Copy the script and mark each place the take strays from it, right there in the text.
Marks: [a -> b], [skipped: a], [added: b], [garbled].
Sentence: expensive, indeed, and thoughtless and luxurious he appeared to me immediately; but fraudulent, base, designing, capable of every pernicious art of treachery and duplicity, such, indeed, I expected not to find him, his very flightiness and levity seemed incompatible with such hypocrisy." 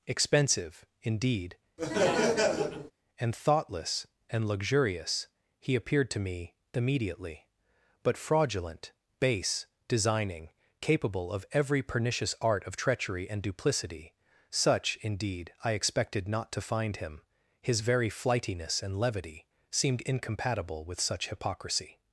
expensive, indeed, and thoughtless and luxurious he appeared to me immediately; but fraudulent, base, designing, capable of every pernicious art of treachery and duplicity, such, indeed, I expected not to find him, his very flightiness and levity seemed incompatible with such hypocrisy."